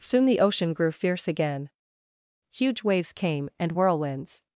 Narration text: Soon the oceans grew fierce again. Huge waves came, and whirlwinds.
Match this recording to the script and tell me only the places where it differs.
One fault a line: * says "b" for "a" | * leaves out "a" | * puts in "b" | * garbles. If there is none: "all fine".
* says "ocean" for "oceans"